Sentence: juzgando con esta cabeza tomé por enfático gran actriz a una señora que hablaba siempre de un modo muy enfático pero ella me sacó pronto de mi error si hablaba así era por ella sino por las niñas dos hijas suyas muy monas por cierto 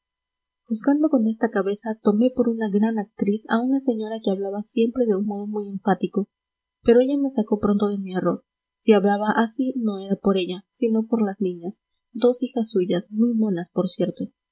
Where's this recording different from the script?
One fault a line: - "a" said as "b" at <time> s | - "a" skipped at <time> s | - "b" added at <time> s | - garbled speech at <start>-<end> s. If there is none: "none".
- "enfático" said as "una" at 2.5 s
- "no" added at 9.8 s